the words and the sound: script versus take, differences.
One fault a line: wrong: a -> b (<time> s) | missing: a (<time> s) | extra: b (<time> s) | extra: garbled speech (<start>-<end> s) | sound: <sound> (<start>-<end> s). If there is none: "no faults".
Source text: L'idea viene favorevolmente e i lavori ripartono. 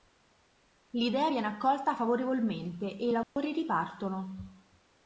extra: accolta (1.5 s)
sound: dropout (3.2-3.4 s)